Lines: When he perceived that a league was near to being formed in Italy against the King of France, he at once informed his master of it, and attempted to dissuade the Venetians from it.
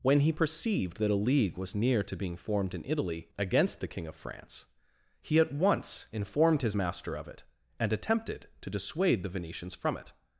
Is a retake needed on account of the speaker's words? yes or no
no